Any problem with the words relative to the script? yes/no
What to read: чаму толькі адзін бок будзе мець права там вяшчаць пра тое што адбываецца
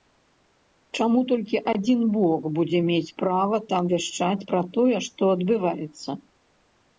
no